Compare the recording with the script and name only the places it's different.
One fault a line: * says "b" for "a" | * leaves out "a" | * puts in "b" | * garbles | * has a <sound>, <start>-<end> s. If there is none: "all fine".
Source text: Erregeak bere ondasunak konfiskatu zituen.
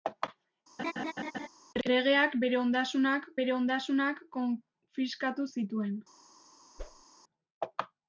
* has a laugh, 0.8-1.5 s
* puts in "bere ondasunak"
* has a whoosh, 6.8-7.0 s